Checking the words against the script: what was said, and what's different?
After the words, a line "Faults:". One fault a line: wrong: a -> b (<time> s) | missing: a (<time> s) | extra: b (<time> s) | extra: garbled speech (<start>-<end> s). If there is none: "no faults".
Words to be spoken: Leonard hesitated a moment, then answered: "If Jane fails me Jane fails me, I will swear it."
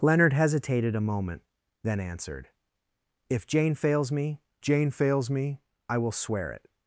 Leonard hesitated a moment, then answered: "If Jane fails me Jane fails me, I will swear it."
Faults:
no faults